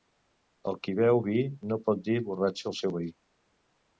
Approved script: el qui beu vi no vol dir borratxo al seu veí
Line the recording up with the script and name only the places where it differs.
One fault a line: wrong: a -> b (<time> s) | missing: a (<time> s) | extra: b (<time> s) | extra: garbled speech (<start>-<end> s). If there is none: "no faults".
wrong: vol -> pot (1.9 s)